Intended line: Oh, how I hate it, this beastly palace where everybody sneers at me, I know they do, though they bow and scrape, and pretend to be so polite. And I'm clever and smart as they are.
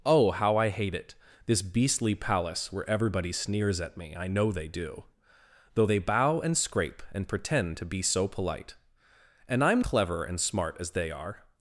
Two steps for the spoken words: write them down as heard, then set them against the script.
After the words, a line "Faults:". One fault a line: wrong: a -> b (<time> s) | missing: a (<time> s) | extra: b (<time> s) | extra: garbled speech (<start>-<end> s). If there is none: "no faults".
Oh, how I hate it, this beastly palace where everybody sneers at me, I know they do, though they bow and scrape, and pretend to be so polite. And I'm clever and smart as they are.
Faults:
no faults